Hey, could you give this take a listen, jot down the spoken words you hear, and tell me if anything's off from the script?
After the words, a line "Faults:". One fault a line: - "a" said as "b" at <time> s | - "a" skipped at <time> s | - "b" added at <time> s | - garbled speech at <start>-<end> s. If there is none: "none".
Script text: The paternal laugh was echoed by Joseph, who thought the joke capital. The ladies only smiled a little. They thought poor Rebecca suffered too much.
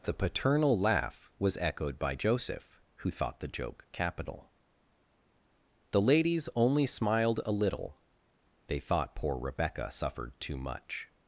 The paternal laugh was echoed by Joseph, who thought the joke capital. The ladies only smiled a little. They thought poor Rebecca suffered too much.
Faults:
none